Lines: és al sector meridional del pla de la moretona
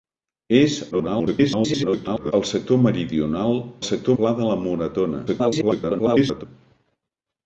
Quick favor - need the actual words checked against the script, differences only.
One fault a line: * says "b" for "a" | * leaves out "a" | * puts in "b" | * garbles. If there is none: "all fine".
* garbles
* says "sector" for "del"
* garbles